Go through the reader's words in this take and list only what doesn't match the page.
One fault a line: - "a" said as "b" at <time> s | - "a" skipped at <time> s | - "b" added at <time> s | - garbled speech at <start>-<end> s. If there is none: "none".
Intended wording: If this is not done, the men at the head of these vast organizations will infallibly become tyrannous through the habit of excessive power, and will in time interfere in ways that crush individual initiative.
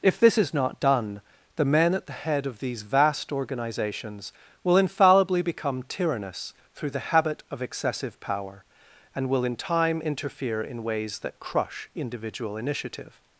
none